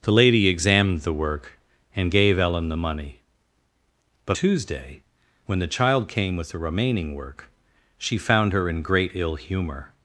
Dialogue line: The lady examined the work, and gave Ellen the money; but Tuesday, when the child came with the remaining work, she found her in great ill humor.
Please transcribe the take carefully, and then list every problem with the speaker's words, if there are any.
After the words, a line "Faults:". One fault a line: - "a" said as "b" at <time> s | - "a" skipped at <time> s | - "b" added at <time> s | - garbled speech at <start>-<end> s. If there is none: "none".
The lady examined the work, and gave Ellen the money; but Tuesday, when the child came with the remaining work, she found her in great ill humor.
Faults:
none